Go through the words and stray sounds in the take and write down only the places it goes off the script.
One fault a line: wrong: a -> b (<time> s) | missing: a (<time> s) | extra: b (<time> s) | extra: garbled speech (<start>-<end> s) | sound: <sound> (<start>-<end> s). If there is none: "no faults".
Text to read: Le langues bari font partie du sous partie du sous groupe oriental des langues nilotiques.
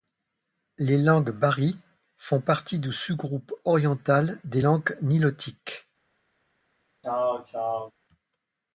wrong: Le -> Les (0.8 s)
missing: partie du sous (3.1 s)
sound: throat clearing (7.0-7.9 s)